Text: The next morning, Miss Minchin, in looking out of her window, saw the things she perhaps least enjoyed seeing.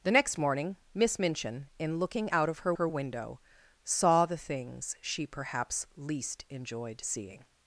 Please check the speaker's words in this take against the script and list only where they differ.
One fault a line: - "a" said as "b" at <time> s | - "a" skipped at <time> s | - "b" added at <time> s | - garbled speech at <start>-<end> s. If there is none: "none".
- "her" added at 2.7 s